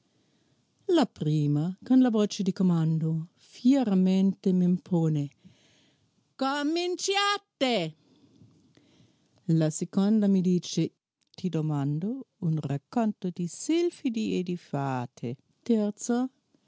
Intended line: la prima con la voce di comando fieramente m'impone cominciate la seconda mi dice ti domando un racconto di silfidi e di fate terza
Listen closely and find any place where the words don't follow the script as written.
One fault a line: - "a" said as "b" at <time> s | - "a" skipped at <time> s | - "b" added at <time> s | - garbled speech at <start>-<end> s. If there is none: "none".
none